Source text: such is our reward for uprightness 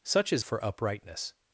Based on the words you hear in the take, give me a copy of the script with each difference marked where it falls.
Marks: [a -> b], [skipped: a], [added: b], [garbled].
such is [skipped: our reward] for uprightness